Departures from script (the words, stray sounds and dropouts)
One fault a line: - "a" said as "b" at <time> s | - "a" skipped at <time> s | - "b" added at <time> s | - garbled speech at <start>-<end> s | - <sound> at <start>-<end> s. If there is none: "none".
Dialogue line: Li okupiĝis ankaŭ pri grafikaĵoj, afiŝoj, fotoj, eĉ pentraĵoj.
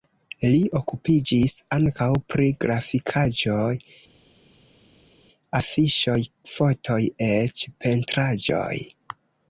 none